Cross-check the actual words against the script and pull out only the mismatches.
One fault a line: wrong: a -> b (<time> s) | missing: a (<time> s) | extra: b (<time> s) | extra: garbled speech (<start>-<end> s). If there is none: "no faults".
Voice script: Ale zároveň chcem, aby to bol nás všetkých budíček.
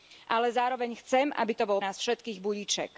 no faults